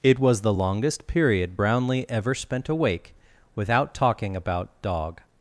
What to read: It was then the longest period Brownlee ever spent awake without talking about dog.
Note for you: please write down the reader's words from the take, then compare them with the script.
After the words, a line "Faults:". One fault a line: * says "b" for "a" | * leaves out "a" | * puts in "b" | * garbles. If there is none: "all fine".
It was the longest period Brownlee ever spent awake without talking about dog.
Faults:
* leaves out "then"